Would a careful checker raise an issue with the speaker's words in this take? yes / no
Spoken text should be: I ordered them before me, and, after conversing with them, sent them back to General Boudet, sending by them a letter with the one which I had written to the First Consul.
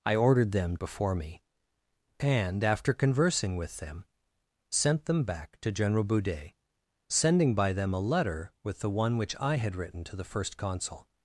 no